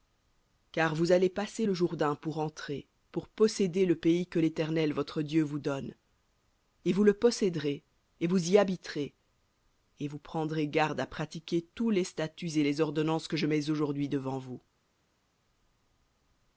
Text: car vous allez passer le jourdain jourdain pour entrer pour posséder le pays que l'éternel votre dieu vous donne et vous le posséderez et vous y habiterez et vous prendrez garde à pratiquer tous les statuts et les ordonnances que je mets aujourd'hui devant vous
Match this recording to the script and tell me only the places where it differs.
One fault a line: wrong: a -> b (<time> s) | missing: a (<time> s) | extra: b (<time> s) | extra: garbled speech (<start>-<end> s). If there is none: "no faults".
missing: jourdain (2.2 s)